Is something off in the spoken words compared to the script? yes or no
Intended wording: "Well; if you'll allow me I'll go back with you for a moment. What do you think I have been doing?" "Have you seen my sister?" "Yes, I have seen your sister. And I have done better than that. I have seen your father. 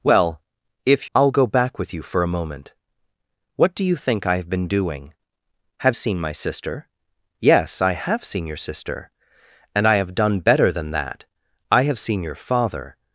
yes